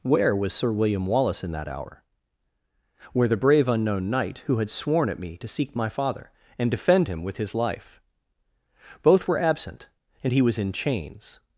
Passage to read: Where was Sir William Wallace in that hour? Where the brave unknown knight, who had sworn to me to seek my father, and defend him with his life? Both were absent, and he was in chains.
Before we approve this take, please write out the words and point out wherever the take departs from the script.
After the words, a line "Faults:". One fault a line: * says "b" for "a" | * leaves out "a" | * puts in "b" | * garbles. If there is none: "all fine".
Where was Sir William Wallace in that hour? Where the brave unknown knight, who had sworn at me to seek my father, and defend him with his life? Both were absent, and he was in chains.
Faults:
* says "at" for "to"